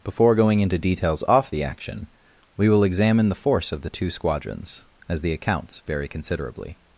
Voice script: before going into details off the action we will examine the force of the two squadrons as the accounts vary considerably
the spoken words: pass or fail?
pass